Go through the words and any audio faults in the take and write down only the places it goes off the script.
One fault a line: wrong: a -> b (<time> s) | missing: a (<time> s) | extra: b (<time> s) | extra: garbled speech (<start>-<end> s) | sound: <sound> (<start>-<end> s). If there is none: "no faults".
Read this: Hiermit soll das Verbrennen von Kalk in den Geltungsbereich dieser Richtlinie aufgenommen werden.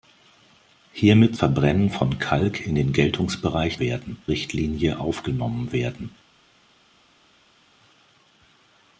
missing: soll das (1.4 s)
wrong: dieser -> werden (3.8 s)